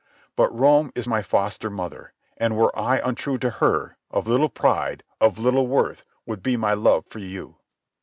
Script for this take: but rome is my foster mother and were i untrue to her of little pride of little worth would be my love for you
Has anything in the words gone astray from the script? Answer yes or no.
no